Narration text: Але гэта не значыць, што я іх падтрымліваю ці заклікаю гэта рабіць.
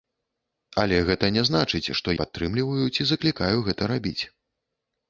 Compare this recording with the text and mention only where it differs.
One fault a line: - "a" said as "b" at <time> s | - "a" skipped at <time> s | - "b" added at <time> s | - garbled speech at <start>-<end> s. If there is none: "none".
- "я іх" skipped at 2.1 s